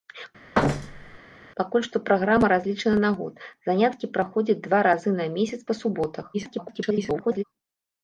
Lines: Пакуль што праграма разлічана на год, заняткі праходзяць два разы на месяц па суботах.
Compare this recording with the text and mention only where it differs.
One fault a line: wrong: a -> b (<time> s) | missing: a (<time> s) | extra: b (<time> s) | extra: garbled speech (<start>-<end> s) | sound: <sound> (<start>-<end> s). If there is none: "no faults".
sound: thud (0.5-1.2 s)
extra: garbled speech (6.3-7.4 s)